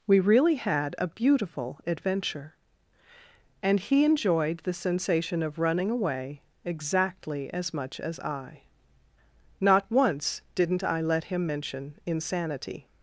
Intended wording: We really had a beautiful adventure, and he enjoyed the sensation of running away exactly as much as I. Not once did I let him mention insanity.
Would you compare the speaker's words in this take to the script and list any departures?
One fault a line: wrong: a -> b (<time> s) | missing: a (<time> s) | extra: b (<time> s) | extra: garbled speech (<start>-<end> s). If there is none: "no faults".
wrong: did -> didn't (10.6 s)